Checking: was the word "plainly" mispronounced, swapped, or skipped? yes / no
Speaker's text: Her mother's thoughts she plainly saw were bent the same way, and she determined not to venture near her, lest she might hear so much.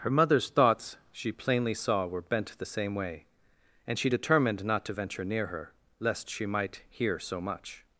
no